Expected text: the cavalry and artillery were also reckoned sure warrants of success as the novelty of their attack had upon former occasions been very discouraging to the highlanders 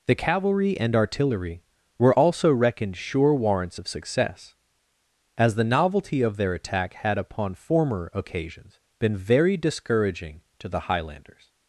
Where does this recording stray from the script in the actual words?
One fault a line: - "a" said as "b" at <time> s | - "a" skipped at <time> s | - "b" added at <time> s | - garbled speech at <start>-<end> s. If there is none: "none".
none